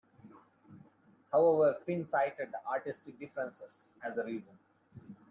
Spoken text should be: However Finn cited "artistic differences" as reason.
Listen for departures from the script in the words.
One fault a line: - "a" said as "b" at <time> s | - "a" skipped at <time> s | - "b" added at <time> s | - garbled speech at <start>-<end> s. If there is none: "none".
- "the" added at 4.1 s